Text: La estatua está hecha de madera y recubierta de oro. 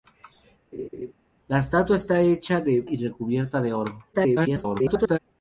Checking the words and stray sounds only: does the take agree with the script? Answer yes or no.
no